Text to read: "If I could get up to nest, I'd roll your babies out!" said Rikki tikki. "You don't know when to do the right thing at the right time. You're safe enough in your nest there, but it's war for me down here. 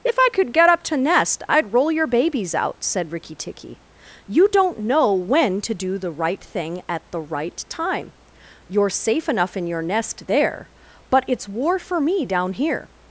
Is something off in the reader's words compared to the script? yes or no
no